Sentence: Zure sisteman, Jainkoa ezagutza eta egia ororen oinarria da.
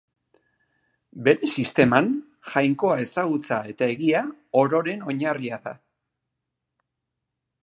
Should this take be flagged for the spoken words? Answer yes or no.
yes